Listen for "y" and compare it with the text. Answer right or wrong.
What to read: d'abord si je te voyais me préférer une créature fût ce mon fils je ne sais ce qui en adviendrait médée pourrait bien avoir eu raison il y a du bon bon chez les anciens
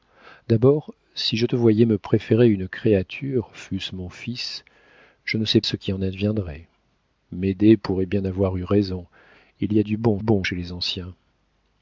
right